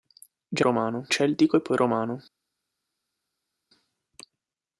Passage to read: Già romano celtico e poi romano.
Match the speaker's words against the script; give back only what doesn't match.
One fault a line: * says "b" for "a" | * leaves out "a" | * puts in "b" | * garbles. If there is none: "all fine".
all fine